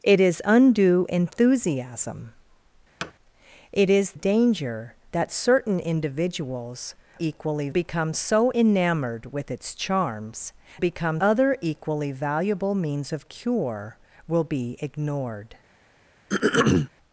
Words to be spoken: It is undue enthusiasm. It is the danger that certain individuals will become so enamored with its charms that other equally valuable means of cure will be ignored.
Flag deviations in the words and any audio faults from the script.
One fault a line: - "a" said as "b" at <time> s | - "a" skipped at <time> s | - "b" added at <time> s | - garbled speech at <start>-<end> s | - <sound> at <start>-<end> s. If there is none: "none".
- thud at 3.0-3.1 s
- "the" skipped at 4.1 s
- "will" said as "equally" at 7.2 s
- "that" said as "become" at 10.8 s
- throat clearing at 16.3-16.9 s